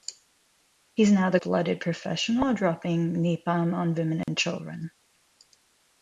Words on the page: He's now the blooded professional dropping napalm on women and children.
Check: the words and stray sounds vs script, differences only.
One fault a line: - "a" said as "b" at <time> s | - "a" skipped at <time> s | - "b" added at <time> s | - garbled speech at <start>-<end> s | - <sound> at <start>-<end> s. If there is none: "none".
- dropout at 4.2-4.3 s